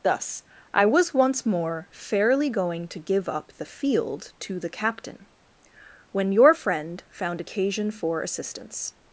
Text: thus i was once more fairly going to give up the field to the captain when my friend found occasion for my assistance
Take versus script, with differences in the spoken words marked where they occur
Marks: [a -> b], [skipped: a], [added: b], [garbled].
thus i was once more fairly going to give up the field to the captain when [my -> your] friend found occasion for [skipped: my] assistance